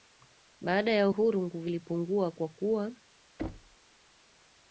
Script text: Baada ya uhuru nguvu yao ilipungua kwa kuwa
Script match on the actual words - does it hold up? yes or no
no